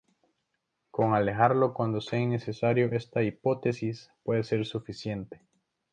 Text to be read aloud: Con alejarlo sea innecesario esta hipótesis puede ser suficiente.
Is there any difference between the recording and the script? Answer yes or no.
yes